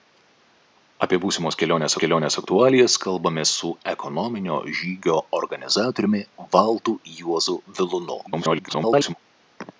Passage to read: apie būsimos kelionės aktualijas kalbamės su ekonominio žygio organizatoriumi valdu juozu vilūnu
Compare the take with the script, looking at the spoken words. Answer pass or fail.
fail